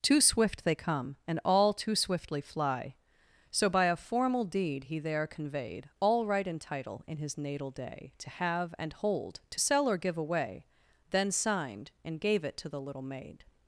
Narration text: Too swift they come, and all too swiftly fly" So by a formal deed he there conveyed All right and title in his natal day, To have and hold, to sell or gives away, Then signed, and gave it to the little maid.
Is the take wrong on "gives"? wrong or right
wrong